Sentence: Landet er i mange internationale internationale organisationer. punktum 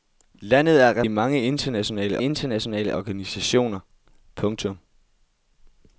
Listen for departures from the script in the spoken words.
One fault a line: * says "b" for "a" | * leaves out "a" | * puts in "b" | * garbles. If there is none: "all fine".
all fine